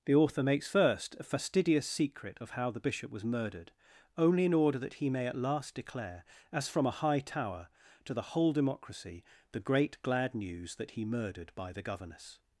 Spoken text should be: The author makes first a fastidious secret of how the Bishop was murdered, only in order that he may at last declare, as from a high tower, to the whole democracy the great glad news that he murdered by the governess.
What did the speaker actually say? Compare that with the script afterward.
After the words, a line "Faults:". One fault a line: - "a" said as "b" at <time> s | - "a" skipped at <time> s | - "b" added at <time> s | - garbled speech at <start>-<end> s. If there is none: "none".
The author makes first a fastidious secret of how the Bishop was murdered, only in order that he may at last declare, as from a high tower, to the whole democracy the great glad news that he murdered by the governess.
Faults:
none